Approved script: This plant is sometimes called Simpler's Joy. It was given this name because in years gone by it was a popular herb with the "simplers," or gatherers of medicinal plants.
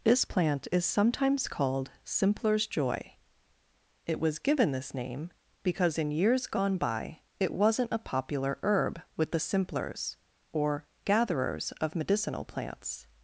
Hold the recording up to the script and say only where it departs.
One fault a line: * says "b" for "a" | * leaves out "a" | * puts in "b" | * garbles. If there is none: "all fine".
* says "wasn't" for "was"